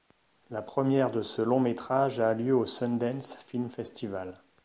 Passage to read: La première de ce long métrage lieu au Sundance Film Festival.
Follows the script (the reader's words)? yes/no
no